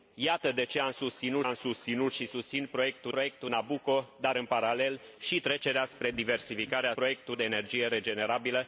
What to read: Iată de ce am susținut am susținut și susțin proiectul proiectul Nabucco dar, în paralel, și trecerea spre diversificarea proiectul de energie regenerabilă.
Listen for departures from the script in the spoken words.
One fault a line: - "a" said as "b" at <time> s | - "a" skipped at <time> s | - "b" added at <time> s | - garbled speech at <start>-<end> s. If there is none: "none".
none